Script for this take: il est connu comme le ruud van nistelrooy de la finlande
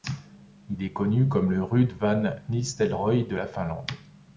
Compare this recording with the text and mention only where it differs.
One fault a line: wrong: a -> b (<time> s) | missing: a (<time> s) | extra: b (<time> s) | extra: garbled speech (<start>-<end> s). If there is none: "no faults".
no faults